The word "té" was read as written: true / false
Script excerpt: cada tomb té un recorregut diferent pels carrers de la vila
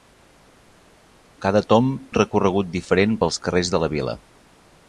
false